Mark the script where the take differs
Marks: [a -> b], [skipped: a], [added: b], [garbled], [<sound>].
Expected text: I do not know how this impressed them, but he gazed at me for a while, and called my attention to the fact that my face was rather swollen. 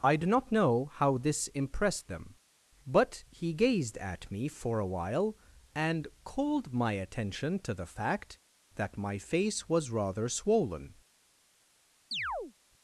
I do not know how this impressed them, but he gazed at me for a while, and called my attention to the fact that my face was rather swollen. [chirp]